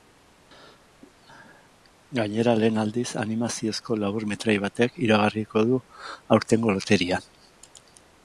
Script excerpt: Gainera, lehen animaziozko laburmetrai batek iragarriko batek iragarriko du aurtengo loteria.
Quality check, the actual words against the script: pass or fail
fail